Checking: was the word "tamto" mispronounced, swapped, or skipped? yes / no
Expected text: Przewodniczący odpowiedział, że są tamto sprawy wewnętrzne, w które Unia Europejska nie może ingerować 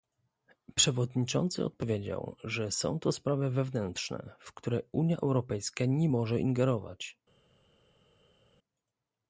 yes